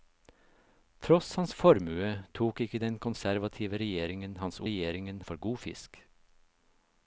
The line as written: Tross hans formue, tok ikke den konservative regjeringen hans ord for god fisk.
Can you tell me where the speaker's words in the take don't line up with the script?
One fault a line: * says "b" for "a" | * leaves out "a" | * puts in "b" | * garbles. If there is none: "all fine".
* says "regjeringen" for "ord"